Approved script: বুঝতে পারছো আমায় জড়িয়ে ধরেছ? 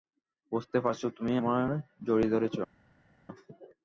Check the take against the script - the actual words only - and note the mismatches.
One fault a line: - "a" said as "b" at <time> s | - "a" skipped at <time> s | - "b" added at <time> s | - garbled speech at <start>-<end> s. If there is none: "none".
- "তুমি" added at 1.2 s